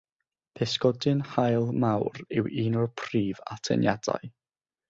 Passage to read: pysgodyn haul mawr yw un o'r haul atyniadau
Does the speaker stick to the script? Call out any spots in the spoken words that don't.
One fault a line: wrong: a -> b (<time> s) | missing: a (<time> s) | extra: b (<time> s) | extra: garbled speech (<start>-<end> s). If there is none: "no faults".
wrong: haul -> prif (3.0 s)